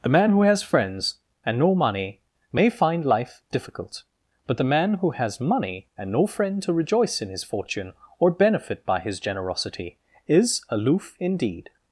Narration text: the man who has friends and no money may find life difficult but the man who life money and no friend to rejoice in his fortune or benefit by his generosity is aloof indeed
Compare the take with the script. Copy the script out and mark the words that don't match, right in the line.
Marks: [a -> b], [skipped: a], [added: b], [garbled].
the man who has friends and no money may find life difficult but the man who [life -> has] money and no friend to rejoice in his fortune or benefit by his generosity is aloof indeed